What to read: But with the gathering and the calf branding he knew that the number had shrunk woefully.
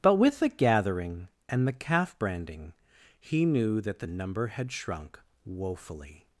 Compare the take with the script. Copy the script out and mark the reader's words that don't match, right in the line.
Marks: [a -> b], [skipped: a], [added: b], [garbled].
But with the gathering and the calf branding he knew that the number had shrunk woefully.